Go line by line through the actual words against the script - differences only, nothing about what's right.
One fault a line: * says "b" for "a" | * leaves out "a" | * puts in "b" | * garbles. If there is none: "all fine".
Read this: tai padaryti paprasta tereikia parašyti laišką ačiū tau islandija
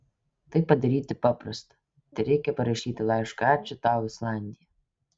all fine